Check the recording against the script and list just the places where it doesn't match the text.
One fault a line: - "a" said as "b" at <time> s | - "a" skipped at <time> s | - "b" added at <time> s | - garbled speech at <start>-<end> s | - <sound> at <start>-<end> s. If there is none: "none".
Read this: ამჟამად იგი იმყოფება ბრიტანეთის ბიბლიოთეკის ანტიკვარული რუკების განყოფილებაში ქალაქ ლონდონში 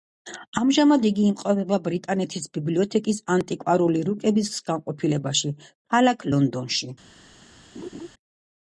- laugh at 7.7-8.1 s